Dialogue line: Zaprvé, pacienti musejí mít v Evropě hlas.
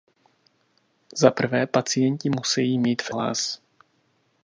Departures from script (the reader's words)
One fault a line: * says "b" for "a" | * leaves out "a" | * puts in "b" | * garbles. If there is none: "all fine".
* leaves out "Evropě"